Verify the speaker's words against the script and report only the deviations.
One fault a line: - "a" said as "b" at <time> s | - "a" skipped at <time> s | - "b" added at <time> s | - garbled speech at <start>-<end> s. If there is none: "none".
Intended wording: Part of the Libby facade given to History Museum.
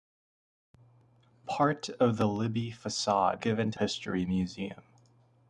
none